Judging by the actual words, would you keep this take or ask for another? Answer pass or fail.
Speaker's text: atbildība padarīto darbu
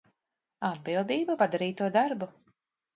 pass